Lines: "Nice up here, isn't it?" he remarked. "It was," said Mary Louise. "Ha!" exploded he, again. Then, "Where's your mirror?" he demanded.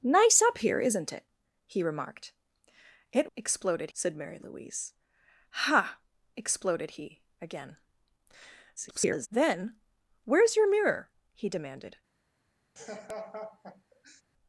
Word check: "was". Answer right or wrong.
wrong